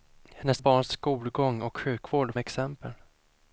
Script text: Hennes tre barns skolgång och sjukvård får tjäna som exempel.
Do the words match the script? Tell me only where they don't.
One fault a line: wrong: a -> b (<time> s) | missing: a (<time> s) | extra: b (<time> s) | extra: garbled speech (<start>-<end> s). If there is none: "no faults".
missing: tre (0.6 s)
missing: får tjäna som (2.3 s)